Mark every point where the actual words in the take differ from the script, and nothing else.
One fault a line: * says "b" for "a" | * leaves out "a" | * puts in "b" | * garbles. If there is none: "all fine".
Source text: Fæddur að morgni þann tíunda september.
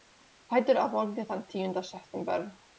all fine